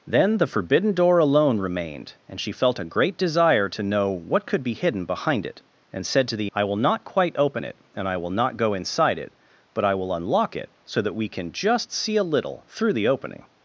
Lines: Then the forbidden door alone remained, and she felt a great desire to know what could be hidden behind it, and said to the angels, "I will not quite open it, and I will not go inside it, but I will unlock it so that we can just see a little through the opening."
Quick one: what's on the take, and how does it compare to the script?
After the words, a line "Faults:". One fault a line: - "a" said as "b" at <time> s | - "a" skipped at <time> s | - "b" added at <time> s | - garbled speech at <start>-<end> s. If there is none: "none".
Then the forbidden door alone remained, and she felt a great desire to know what could be hidden behind it, and said to the "I will not quite open it, and I will not go inside it, but I will unlock it so that we can just see a little through the opening."
Faults:
- "angels" skipped at 6.5 s